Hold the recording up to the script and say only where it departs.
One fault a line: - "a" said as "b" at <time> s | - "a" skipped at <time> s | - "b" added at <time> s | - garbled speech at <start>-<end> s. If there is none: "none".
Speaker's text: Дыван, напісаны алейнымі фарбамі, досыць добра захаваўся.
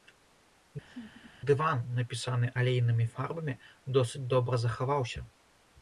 none